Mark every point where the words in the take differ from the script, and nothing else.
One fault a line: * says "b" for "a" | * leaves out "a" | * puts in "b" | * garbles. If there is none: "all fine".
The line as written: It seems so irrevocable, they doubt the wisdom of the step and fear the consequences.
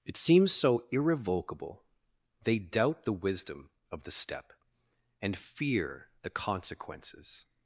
all fine